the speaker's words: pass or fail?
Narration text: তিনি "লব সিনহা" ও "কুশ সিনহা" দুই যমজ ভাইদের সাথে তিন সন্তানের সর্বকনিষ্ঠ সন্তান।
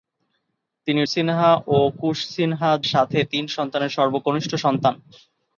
fail